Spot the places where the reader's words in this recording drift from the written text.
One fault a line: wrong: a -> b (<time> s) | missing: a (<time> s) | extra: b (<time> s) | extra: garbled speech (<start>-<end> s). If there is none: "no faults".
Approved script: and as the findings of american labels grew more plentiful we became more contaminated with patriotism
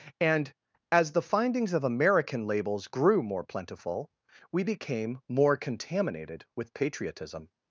no faults